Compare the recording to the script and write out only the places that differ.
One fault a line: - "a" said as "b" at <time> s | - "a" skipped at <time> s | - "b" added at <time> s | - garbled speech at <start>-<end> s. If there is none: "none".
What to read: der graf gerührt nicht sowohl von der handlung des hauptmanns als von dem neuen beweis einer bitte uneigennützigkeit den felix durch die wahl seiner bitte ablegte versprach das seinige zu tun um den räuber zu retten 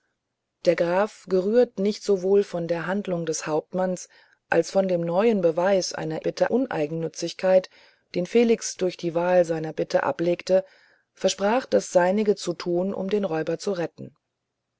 none